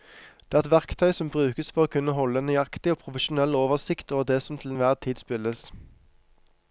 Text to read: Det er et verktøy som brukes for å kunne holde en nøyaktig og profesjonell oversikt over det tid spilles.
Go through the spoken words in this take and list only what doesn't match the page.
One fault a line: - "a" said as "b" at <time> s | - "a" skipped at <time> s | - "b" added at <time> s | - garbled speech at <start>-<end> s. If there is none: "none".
- "som til enhver" added at 4.4 s